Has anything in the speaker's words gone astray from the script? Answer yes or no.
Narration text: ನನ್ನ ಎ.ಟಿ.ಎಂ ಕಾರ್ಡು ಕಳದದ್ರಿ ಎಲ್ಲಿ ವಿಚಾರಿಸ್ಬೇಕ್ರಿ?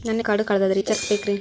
yes